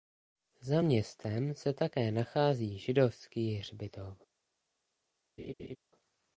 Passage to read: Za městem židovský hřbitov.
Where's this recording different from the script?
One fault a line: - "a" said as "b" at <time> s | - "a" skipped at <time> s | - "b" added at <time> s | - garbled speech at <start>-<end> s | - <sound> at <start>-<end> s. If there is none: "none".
- "se také nachází" added at 1.5 s
- laugh at 5.4-5.8 s